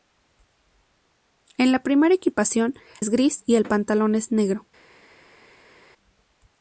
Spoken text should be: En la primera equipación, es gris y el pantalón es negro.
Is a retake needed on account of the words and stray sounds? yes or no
no